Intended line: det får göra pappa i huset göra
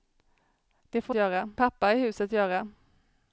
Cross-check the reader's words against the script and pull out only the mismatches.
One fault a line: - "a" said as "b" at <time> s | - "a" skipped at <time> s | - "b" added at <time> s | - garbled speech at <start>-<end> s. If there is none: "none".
none